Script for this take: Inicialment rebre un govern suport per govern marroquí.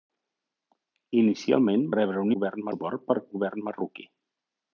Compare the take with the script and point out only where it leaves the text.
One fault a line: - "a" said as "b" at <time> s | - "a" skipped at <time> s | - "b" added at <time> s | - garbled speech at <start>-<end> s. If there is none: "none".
none